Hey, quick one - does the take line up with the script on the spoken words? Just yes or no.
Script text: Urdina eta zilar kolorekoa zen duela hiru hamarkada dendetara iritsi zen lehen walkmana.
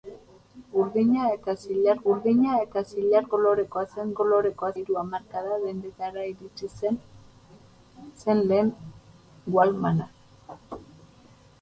no